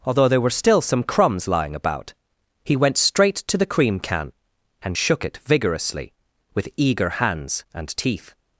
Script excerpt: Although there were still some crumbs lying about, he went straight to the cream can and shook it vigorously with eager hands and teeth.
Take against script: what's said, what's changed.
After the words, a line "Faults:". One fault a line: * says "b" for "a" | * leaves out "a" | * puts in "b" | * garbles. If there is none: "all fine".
Although there were still some crumbs lying about, he went straight to the cream can and shook it vigorously with eager hands and teeth.
Faults:
all fine